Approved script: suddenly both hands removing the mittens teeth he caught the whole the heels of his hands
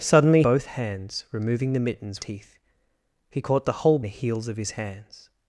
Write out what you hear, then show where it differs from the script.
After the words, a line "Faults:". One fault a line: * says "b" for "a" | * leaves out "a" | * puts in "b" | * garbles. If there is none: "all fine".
suddenly both hands removing the mittens teeth he caught the whole the heels of his hands
Faults:
all fine